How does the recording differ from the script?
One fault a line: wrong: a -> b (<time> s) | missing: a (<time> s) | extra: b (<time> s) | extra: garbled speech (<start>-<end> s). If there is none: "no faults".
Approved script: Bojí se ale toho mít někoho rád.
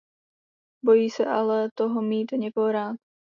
no faults